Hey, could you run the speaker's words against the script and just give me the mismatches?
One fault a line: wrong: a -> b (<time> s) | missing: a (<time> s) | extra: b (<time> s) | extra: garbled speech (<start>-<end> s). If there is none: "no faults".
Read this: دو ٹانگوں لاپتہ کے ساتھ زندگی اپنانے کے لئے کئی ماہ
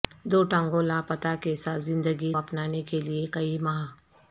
no faults